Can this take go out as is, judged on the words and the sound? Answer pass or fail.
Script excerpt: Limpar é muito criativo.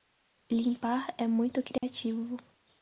fail